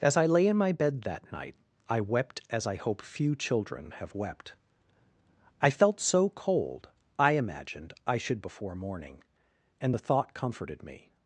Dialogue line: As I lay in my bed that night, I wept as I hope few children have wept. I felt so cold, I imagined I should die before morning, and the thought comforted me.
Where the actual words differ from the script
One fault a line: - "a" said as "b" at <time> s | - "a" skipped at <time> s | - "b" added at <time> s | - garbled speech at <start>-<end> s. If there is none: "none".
- "die" skipped at 8.4 s